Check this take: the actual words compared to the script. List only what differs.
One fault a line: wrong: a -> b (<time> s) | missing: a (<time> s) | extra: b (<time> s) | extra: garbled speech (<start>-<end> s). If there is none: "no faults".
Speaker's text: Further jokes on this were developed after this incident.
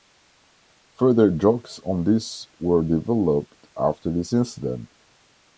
no faults